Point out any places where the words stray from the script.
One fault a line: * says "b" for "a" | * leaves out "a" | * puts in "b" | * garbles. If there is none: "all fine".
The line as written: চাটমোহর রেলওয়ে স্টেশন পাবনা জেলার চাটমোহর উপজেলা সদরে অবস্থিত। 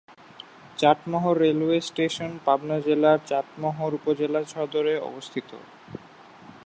all fine